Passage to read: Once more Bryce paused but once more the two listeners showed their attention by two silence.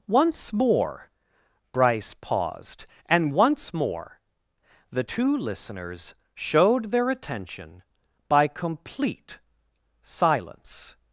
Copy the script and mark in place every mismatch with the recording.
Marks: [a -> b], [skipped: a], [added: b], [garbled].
Once more Bryce paused [but -> and] once more the two listeners showed their attention by [two -> complete] silence.